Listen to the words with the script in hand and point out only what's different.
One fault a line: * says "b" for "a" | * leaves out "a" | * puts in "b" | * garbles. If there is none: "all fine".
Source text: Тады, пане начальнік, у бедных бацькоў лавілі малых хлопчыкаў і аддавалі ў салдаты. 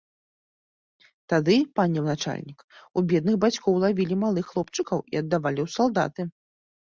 all fine